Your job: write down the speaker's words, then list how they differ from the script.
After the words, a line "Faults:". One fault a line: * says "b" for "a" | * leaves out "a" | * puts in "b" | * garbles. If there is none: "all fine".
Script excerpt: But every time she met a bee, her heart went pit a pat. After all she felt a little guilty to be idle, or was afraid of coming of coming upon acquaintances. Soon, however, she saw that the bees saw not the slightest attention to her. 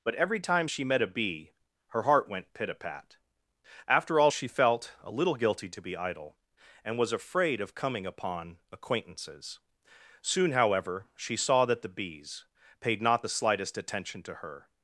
But every time she met a bee, her heart went pit a pat. After all she felt a little guilty to be idle, and was afraid of coming upon acquaintances. Soon, however, she saw that the bees paid not the slightest attention to her.
Faults:
* says "and" for "or"
* leaves out "of coming"
* says "paid" for "saw"